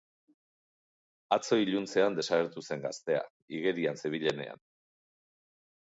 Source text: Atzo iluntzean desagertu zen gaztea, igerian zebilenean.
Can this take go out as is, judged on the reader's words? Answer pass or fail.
pass